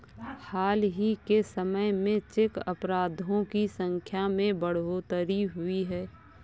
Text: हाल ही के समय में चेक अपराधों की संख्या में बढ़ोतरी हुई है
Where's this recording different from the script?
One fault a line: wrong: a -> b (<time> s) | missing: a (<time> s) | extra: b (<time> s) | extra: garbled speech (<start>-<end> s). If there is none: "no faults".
no faults